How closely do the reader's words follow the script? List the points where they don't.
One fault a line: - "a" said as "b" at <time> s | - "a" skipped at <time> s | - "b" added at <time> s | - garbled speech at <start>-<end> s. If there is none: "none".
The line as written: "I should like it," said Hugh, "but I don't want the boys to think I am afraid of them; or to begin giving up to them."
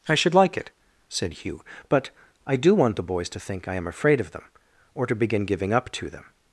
- "don't" said as "do" at 2.5 s